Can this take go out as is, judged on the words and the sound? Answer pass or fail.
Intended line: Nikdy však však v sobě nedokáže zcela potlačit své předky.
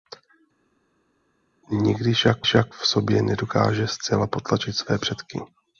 pass